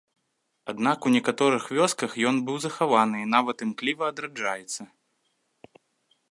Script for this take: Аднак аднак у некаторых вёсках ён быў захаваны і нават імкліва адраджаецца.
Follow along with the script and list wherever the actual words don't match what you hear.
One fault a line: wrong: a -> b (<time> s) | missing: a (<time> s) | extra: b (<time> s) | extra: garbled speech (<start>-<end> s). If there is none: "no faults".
missing: аднак (1.0 s)